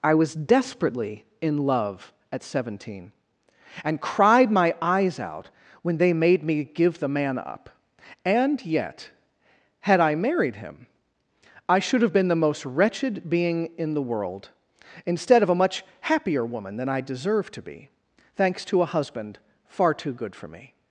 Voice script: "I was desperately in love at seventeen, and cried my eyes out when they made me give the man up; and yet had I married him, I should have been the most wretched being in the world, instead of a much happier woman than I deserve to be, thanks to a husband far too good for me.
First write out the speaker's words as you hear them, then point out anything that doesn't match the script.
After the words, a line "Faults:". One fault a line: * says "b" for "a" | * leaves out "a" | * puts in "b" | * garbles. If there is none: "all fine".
"I was desperately in love at seventeen, and cried my eyes out when they made me give the man up; and yet had I married him, I should have been the most wretched being in the world, instead of a much happier woman than I deserve to be, thanks to a husband far too good for me.
Faults:
all fine